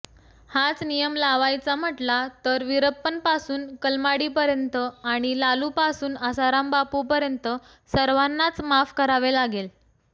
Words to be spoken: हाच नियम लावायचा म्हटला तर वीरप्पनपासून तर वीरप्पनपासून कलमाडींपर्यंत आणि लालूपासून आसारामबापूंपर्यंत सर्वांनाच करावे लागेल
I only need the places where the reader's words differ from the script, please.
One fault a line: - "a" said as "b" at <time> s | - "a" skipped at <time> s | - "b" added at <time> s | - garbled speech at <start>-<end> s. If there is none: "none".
- "तर वीरप्पनपासून" skipped at 3.7 s
- "माफ" added at 8.6 s